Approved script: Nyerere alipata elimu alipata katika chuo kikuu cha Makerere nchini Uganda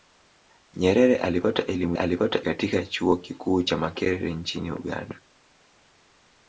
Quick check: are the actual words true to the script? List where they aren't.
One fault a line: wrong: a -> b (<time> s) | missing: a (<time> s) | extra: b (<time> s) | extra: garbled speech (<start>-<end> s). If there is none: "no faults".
no faults